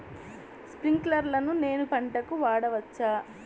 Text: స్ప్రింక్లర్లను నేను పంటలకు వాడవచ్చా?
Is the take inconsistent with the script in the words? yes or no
no